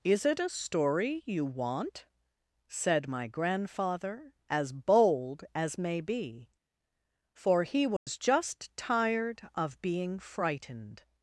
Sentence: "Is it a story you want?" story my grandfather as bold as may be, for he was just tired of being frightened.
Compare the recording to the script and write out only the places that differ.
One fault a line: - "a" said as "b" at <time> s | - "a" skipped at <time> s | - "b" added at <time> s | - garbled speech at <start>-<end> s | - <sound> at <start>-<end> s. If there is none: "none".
- "story" said as "said" at 2.7 s
- dropout at 8.0-8.1 s